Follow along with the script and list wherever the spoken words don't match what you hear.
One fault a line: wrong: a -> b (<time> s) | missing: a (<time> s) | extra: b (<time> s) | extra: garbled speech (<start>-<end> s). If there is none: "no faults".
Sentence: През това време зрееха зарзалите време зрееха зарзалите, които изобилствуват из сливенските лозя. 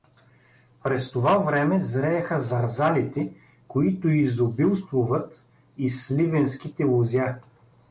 missing: време зрееха зарзалите (3.3 s)